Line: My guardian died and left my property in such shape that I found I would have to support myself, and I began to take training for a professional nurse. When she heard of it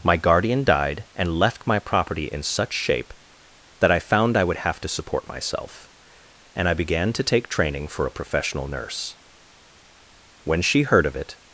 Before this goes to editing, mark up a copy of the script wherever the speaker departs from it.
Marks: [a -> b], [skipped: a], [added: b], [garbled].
My guardian died and left my property in such shape that I found I would have to support myself, and I began to take training for a professional nurse. When she heard of it